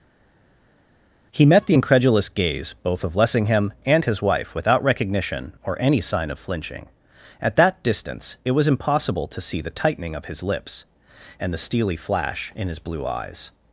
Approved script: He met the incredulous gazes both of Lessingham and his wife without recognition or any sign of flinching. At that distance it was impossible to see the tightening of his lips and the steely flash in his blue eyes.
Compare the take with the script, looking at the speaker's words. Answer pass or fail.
fail